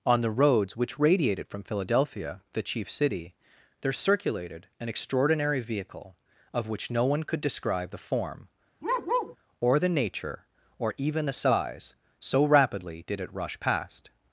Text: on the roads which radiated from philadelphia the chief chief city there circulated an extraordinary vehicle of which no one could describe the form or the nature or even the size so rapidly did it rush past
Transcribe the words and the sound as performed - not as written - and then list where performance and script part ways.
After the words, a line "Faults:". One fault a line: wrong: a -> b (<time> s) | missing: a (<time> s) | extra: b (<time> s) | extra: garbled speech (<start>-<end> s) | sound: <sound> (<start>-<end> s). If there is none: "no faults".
on the roads which radiated from philadelphia the chief city there circulated an extraordinary vehicle of which no one could describe the form or the nature or even the size so rapidly did it rush past
Faults:
missing: chief (2.9 s)
sound: bark (8.8-9.4 s)